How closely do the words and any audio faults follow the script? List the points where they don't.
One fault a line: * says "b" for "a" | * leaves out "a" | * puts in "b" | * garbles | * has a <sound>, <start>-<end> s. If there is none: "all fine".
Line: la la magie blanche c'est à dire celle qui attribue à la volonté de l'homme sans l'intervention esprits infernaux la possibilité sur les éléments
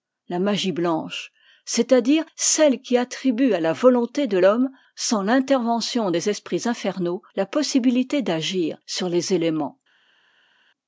* leaves out "la"
* puts in "des"
* puts in "d'agir"